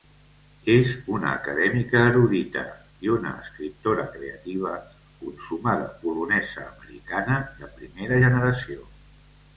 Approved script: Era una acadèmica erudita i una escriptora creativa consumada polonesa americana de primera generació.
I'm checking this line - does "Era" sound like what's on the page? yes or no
no